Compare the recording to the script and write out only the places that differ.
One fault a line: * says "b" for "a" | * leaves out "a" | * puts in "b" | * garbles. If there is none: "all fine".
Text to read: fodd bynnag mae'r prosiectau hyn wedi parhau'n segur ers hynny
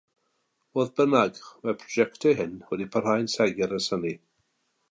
all fine